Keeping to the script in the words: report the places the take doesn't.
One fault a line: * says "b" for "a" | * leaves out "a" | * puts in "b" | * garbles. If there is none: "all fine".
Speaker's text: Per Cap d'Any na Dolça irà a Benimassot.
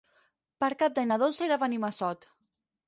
all fine